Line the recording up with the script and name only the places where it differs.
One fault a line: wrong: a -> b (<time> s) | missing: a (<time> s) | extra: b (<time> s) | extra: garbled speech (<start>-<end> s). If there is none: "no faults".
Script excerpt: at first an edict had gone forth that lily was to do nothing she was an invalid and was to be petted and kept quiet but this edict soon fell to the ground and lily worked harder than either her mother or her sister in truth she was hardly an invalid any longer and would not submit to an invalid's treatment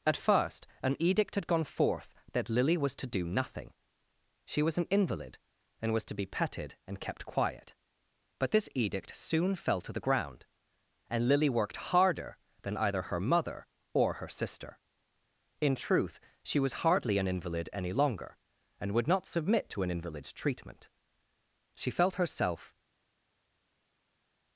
extra: she felt herself (21.8 s)